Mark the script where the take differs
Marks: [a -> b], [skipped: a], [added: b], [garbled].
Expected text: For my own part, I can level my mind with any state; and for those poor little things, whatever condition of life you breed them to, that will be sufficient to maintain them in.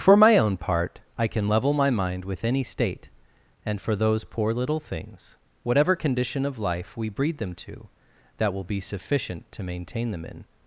For my own part, I can level my mind with any state; and for those poor little things, whatever condition of life [you -> we] breed them to, that will be sufficient to maintain them in.